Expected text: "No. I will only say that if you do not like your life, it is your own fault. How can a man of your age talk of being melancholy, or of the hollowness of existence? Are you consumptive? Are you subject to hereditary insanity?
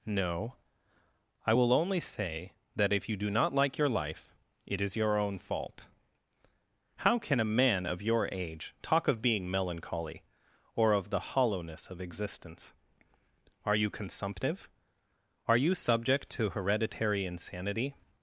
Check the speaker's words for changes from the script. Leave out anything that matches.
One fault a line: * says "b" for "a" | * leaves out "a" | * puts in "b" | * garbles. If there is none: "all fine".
all fine